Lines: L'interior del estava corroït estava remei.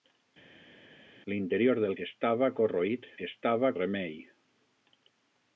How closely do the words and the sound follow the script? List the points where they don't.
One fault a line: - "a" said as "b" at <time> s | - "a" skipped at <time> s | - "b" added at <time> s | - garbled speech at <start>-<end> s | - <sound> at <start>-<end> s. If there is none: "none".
none